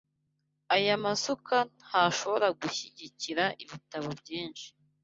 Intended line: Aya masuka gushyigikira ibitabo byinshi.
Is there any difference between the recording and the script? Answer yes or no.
yes